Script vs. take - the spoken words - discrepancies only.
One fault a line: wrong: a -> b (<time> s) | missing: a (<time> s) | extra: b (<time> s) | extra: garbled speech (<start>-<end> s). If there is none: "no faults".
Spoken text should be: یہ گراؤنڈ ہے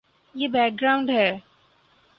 extra: بیک (0.5 s)